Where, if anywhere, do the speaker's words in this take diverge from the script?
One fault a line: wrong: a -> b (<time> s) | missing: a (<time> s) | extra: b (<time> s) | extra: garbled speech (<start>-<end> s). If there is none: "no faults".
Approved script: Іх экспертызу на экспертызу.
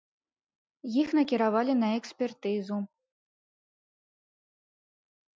wrong: экспертызу -> накіравалі (1.2 s)